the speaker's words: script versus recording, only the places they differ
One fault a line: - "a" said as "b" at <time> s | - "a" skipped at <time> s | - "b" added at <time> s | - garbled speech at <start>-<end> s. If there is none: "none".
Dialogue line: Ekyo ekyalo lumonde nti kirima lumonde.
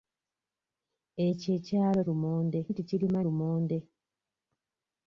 none